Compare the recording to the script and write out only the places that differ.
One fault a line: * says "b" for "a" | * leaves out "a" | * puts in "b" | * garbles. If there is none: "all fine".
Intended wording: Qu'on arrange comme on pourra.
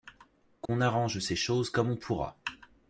* puts in "ces choses"